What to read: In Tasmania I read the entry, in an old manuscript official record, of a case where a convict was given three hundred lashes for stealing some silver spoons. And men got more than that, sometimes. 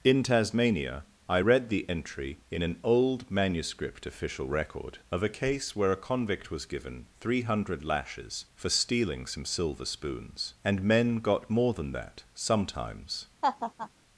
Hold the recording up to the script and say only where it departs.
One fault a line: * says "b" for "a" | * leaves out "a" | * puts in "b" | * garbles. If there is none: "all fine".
all fine